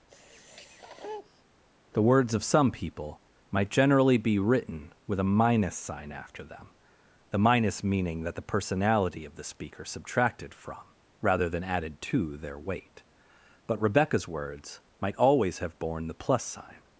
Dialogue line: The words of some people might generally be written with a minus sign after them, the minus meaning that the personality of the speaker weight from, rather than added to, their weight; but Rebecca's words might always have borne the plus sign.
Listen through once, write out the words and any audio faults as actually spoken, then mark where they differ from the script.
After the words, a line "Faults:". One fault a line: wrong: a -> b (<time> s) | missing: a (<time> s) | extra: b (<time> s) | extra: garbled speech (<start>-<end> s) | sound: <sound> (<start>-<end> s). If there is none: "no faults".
The words of some people might generally be written with a minus sign after them, the minus meaning that the personality of the speaker subtracted from, rather than added to, their weight; but Rebecca's words might always have borne the plus sign.
Faults:
sound: sniff (0.1-1.4 s)
wrong: weight -> subtracted (9.8 s)